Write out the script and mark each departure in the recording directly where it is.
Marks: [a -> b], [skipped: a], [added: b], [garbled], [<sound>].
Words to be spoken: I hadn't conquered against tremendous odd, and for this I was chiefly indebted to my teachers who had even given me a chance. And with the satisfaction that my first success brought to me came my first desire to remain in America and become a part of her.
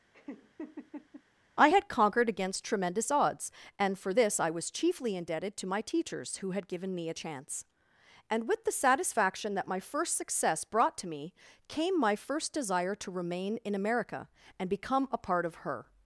[laugh] I [hadn't -> had] conquered against tremendous [odd, -> odds] and for this I was chiefly indebted to my teachers who had [skipped: even] given me a chance. And with the satisfaction that my first success brought to me came my first desire to remain in America and become a part of her.